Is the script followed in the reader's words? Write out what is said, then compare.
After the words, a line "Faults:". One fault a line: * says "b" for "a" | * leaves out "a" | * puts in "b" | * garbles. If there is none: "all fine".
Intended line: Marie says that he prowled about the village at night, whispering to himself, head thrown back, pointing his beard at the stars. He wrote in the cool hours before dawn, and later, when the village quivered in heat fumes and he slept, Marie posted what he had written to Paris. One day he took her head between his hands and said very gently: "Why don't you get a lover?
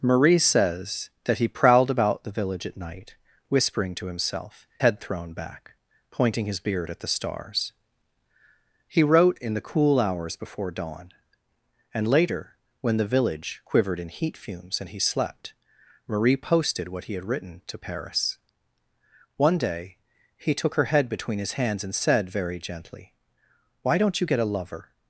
Marie says that he prowled about the village at night, whispering to himself, head thrown back, pointing his beard at the stars. He wrote in the cool hours before dawn, and later, when the village quivered in heat fumes and he slept, Marie posted what he had written to Paris. One day he took her head between his hands and said very gently: "Why don't you get a lover?
Faults:
all fine